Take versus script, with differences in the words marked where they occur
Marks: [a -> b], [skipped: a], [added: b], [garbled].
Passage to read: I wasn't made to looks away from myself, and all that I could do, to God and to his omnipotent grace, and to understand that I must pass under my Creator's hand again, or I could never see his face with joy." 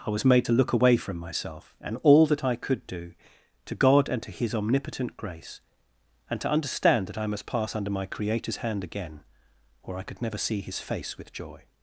I [wasn't -> was] made to [looks -> look] away from myself, and all that I could do, to God and to his omnipotent grace, and to understand that I must pass under my Creator's hand again, or I could never see his face with joy."